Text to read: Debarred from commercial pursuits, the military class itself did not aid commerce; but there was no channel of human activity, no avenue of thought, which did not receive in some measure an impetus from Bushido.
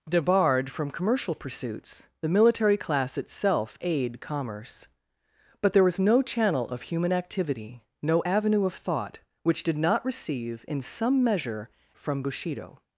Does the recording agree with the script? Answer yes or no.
no